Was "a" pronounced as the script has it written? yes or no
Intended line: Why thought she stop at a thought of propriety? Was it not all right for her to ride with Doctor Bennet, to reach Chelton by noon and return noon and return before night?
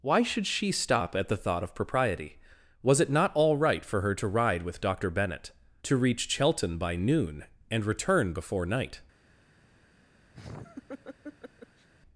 no